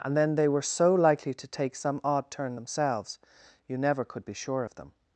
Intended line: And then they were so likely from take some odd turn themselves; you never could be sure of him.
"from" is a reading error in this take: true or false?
true